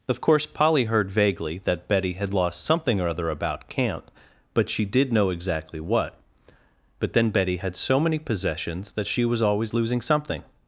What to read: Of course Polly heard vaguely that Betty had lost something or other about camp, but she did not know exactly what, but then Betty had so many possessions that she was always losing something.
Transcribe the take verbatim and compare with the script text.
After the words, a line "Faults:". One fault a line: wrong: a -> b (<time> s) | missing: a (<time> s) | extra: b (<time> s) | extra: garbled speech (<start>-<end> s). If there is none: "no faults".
Of course Polly heard vaguely that Betty had lost something or other about camp, but she did know exactly what, but then Betty had so many possessions that she was always losing something.
Faults:
missing: not (5.1 s)